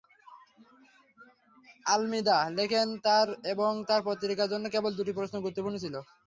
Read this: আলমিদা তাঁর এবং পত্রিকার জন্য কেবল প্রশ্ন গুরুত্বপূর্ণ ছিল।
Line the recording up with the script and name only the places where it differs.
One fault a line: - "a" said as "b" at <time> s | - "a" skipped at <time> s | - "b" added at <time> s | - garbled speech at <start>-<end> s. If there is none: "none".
- "লেখেন" added at 2.6 s
- "তাঁর" added at 3.9 s
- "দুটি" added at 5.0 s